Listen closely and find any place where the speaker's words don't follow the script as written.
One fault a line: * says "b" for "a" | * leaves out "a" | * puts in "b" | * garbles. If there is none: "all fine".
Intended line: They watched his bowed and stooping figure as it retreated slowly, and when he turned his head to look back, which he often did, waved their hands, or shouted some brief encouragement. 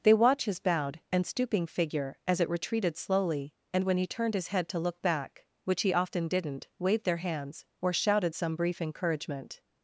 * says "watch" for "watched"
* says "didn't" for "did"